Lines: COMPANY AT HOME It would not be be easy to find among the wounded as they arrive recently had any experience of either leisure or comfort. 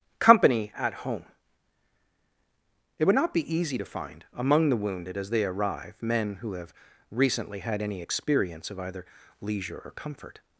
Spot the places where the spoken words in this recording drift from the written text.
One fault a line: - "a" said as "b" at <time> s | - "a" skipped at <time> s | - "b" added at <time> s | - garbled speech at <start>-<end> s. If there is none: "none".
- "be" skipped at 3.5 s
- "men who have" added at 6.0 s